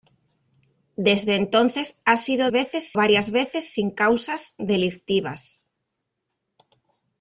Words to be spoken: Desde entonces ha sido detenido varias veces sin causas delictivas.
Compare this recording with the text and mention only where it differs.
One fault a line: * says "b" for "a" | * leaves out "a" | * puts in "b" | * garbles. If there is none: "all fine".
* says "veces" for "detenido"